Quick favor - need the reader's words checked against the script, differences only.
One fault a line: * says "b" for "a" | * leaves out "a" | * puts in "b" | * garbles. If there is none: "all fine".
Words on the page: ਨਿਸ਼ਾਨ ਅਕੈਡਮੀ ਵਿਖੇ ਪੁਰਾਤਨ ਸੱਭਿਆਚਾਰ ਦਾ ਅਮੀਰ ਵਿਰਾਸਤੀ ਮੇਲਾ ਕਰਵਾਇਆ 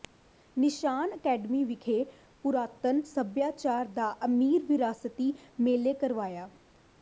all fine